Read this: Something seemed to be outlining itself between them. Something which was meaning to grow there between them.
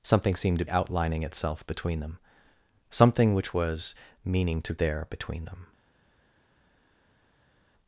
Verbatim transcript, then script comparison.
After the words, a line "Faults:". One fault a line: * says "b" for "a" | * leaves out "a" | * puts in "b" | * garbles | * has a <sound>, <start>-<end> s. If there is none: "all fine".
Something seemed to outlining itself between them. Something which was meaning to there between them.
Faults:
* leaves out "be"
* leaves out "grow"